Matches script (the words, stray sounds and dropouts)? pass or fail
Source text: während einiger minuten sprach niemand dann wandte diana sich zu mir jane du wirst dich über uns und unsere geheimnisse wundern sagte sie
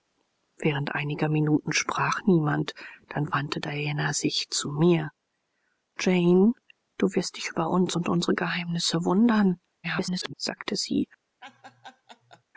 fail